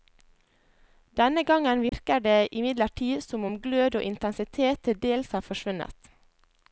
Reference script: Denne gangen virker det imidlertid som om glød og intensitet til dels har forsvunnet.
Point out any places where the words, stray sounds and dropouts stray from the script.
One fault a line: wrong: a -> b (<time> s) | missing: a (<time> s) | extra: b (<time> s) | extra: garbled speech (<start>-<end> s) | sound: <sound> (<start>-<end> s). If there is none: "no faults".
sound: dropout (1.9-1.9 s)